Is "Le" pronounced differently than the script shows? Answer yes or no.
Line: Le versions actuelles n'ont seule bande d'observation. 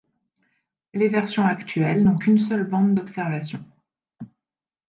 yes